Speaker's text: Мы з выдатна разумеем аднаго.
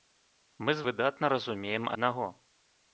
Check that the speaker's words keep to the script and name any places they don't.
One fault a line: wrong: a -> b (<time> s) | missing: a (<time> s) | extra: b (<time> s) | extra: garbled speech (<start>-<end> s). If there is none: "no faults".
no faults